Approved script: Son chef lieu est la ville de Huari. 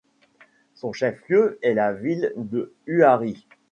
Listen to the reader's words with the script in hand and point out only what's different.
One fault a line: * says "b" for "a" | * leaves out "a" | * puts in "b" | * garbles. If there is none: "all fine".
all fine